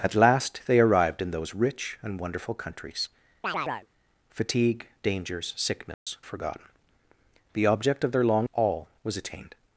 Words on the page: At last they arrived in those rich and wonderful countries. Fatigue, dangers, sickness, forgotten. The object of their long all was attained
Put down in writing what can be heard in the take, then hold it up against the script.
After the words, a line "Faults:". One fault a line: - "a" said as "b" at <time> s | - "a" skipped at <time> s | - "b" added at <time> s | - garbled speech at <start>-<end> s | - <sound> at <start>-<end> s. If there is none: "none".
At last they arrived in those rich and wonderful countries. Fatigue, dangers, sickness, forgotten. The object of their long all was attained
Faults:
- chirp at 3.4-3.9 s
- dropout at 5.9-6.1 s